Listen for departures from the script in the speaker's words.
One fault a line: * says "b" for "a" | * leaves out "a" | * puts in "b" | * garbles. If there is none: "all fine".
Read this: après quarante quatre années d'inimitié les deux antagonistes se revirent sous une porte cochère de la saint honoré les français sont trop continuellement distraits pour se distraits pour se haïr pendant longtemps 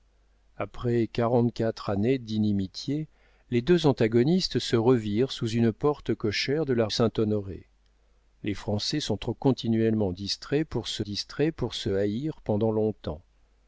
all fine